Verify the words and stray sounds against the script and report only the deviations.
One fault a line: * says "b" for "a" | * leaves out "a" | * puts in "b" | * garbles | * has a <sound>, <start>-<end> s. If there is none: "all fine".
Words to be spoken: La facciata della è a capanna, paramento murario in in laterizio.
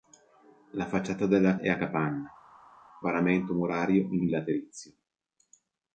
all fine